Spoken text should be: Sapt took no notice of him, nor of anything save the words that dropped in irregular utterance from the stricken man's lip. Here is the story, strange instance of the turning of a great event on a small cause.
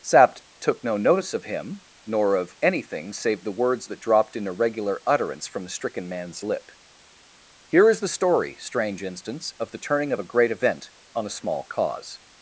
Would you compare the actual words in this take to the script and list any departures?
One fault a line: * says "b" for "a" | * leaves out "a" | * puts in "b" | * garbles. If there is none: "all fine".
all fine